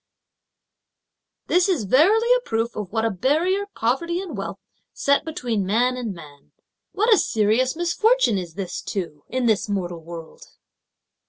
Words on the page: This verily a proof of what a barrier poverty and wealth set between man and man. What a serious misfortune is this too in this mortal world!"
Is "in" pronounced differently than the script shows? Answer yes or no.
no